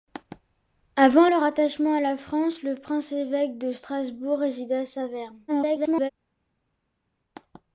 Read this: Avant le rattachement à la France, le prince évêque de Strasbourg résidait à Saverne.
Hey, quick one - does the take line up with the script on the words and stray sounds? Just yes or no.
no